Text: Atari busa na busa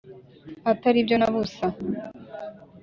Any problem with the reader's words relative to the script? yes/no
yes